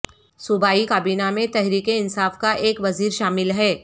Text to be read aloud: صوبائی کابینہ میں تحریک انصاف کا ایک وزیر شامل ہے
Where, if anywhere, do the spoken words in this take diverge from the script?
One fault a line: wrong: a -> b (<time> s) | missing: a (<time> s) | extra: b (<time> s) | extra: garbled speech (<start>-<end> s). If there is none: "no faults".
no faults